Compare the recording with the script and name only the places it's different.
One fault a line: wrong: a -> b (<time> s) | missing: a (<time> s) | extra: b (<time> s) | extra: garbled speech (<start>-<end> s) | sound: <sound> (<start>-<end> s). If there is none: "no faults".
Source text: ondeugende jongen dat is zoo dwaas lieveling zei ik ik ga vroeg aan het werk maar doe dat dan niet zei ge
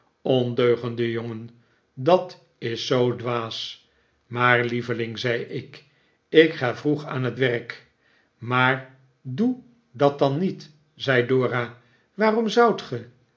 extra: maar (4.2 s)
extra: dora waarom zoudt (11.3 s)